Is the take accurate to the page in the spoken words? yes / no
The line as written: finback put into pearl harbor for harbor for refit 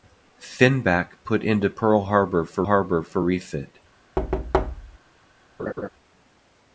yes